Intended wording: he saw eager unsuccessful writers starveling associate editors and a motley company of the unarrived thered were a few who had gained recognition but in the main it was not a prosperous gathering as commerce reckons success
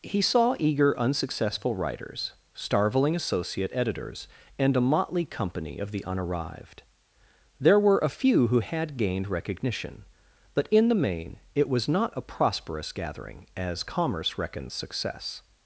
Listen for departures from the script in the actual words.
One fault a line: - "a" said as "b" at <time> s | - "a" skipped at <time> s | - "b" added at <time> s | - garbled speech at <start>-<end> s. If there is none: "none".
- "thered" said as "there" at 7.6 s